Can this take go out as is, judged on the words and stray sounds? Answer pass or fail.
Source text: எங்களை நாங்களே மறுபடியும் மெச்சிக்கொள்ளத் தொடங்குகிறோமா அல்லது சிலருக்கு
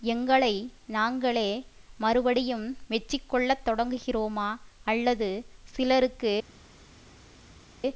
pass